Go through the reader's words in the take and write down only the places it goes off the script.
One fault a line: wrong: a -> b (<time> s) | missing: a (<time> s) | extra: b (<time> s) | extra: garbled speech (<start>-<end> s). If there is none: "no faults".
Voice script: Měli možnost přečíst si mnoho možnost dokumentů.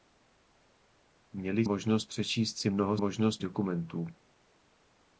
no faults